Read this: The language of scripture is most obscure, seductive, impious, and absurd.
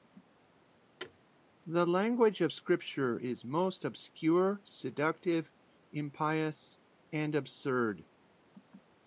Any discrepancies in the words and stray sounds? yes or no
yes